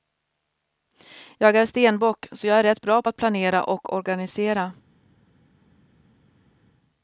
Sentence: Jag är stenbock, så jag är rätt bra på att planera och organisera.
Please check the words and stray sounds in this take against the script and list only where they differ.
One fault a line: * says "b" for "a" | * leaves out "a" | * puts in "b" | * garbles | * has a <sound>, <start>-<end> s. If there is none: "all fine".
all fine